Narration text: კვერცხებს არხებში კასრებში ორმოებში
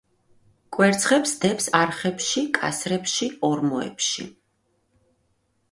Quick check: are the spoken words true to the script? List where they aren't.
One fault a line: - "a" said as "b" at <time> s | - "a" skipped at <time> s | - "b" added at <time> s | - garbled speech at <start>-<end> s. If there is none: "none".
- "დებს" added at 1.4 s